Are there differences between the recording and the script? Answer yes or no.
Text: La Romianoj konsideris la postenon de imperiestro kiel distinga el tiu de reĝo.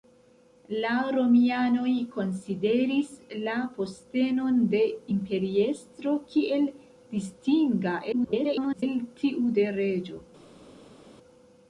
yes